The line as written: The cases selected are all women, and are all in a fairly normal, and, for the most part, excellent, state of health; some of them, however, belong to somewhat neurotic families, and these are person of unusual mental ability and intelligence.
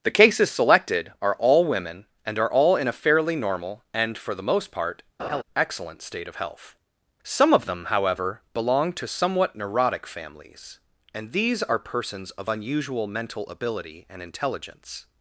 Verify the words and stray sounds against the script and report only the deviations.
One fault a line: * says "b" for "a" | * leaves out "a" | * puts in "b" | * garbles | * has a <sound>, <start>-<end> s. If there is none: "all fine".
* has a laugh, 5.2-5.4 s
* says "persons" for "person"